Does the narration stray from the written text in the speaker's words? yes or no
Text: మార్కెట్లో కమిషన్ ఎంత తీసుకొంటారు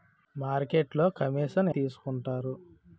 yes